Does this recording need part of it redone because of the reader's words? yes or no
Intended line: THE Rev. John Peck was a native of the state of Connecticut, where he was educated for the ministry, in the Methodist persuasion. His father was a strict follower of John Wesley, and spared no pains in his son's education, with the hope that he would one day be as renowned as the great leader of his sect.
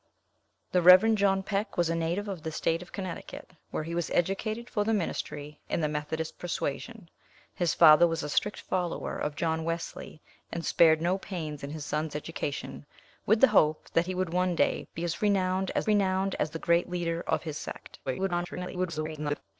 yes